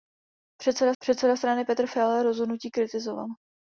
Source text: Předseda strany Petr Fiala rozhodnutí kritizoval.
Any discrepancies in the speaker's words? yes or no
yes